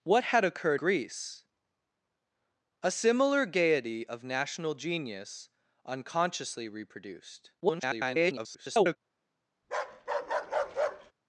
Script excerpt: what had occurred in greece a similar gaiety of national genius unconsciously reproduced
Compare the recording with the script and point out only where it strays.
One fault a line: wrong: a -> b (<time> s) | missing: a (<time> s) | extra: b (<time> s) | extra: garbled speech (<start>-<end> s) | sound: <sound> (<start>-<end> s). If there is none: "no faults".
missing: in (0.8 s)
extra: garbled speech (7.6-9.0 s)
sound: bark (9.6-11.1 s)